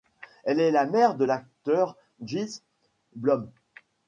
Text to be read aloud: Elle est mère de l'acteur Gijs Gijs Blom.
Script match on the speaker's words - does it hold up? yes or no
no